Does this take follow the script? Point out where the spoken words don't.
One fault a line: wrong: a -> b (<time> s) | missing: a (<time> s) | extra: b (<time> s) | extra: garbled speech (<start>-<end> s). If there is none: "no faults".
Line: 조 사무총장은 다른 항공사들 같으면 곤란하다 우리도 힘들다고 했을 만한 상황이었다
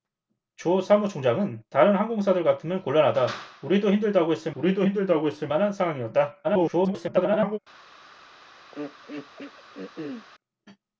extra: 우리도 힘들다고 했을 (4.6 s)
extra: garbled speech (6.4-7.6 s)